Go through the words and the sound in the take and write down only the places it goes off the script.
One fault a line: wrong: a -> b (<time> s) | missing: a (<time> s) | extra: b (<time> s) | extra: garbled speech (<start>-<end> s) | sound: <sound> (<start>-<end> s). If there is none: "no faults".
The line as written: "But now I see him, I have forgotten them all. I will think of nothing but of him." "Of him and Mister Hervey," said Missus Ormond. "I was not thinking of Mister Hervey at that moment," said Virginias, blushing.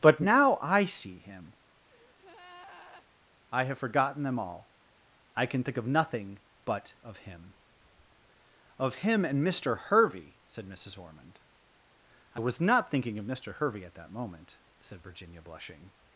sound: breath (1.9-3.1 s)
wrong: will -> can (5.4 s)
wrong: Virginias -> Virginia (15.0 s)